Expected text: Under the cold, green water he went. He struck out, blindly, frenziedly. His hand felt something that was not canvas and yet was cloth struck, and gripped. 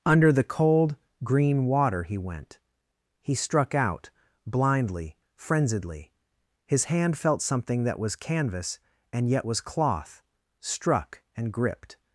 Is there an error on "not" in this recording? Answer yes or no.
yes